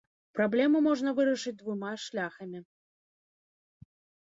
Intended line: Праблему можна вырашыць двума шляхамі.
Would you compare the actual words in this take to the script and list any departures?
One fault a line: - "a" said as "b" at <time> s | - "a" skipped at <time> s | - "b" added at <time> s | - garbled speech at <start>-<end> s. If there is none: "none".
none